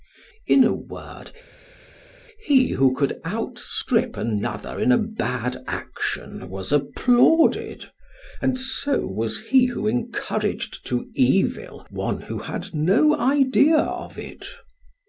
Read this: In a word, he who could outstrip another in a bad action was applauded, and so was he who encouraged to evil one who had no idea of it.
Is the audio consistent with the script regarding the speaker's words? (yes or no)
yes